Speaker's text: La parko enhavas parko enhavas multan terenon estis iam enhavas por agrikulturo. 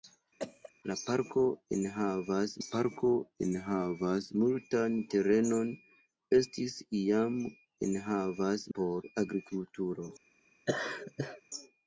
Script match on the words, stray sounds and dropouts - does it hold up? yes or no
no